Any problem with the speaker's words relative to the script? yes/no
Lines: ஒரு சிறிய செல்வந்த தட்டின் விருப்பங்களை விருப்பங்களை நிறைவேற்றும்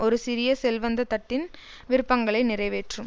yes